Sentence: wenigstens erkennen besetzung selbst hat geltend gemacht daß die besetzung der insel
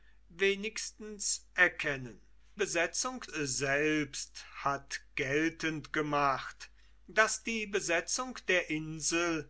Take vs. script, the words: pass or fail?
pass